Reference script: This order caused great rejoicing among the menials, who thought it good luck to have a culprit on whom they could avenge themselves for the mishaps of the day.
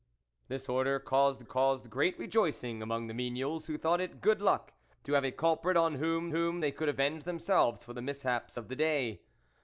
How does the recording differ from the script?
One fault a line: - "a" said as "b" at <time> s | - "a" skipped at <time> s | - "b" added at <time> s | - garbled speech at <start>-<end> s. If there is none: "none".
- "caused" added at 1.4 s
- "whom" added at 6.3 s